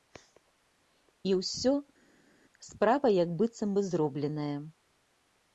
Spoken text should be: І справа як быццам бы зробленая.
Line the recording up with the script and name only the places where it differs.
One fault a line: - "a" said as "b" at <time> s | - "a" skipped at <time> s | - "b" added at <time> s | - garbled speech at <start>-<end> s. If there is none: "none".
- "ўсё" added at 1.4 s